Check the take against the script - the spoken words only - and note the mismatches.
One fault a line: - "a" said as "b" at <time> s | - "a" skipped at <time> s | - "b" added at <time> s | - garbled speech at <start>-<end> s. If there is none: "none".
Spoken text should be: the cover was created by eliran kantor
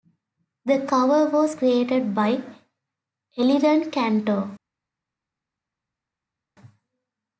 none